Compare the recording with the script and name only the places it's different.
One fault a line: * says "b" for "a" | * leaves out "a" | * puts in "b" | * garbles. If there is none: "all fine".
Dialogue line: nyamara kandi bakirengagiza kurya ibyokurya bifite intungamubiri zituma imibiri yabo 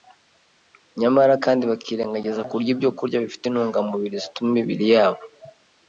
all fine